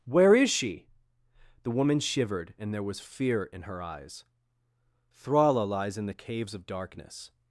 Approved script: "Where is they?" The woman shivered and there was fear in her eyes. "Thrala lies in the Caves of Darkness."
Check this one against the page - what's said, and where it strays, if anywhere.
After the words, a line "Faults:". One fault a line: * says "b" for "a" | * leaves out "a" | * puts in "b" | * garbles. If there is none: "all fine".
"Where is she?" The woman shivered and there was fear in her eyes. "Thrala lies in the Caves of Darkness."
Faults:
* says "she" for "they"